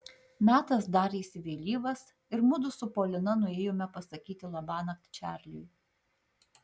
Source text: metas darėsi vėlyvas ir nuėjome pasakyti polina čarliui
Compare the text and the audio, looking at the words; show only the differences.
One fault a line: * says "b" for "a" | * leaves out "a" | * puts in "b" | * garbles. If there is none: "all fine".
* puts in "mudu su polina"
* says "labanakt" for "polina"